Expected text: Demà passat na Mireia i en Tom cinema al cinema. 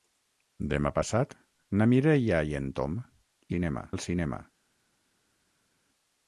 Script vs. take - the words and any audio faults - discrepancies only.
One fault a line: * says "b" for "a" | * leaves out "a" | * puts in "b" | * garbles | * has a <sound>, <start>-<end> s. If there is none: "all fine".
all fine